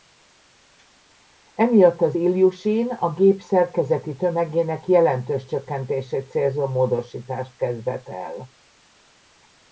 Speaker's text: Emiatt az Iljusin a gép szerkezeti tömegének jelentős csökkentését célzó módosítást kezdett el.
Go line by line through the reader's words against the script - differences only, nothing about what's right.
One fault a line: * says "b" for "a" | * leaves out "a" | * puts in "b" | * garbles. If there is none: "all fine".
all fine